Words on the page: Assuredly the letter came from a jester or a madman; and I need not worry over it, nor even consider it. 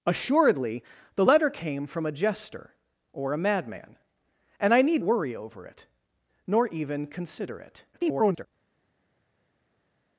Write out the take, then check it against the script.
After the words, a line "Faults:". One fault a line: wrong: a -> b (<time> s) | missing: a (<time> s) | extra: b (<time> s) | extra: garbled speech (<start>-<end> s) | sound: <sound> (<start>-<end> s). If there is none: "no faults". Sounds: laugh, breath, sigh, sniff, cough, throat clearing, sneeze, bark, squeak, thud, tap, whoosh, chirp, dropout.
Assuredly the letter came from a jester or a madman; and I need worry over it, nor even consider it. [garbled]
Faults:
missing: not (5.0 s)
extra: garbled speech (7.9-8.5 s)